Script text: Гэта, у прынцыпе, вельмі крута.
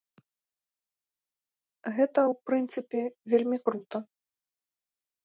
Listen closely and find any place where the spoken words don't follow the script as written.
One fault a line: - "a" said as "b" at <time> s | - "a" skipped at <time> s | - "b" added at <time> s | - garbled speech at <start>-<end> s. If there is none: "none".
none